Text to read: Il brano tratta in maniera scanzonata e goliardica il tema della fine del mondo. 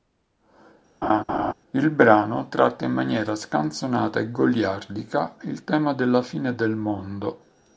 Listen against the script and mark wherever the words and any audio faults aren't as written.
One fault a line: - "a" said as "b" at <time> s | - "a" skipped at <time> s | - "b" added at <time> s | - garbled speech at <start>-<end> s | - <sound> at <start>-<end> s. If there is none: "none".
- laugh at 1.0-1.5 s